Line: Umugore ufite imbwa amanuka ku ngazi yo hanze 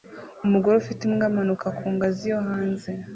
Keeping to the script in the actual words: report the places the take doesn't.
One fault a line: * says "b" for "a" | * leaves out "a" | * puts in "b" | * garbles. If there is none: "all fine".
all fine